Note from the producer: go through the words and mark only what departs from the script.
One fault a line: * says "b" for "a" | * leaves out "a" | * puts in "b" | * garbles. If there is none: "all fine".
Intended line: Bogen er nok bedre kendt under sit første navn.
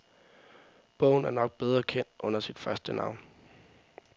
all fine